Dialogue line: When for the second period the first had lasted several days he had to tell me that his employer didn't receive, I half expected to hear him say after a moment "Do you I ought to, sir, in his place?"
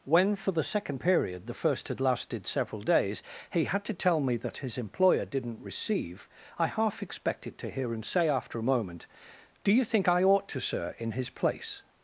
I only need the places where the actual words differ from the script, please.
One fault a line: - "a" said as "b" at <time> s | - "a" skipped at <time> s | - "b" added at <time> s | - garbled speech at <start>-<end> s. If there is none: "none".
- "think" added at 9.8 s